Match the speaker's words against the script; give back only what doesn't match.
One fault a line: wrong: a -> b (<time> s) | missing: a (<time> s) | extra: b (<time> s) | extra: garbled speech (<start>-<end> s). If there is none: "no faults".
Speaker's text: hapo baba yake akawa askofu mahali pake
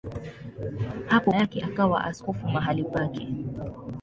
missing: baba (1.3 s)